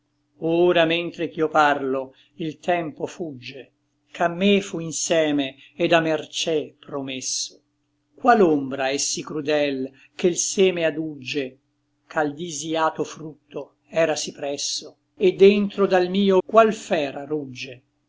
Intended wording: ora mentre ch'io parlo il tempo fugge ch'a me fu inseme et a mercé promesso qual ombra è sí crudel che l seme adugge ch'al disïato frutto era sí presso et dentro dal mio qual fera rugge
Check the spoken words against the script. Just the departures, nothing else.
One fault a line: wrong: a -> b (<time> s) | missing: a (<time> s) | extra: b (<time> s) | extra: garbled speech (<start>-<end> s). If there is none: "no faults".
no faults